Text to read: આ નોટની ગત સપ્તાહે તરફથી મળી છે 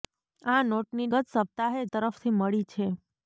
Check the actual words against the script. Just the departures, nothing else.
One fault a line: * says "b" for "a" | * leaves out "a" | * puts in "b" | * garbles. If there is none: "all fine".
all fine